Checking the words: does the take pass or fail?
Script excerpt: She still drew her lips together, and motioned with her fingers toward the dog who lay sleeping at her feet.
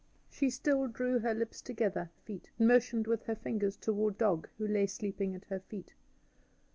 fail